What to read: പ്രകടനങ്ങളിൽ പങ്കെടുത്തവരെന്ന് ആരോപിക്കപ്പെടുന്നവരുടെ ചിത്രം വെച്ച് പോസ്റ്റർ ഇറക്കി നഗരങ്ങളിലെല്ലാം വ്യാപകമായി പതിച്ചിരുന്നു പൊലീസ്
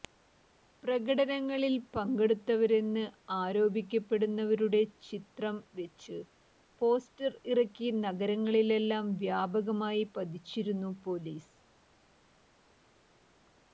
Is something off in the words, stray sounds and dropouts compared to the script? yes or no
no